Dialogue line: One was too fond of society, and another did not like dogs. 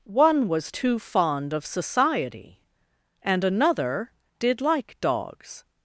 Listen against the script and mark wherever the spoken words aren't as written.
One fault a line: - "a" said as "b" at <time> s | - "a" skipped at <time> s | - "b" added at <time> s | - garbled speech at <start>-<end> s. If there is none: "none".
- "not" skipped at 4.6 s